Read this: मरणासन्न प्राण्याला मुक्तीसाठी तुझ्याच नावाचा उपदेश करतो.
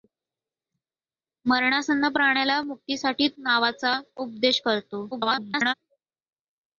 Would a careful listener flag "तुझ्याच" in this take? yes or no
yes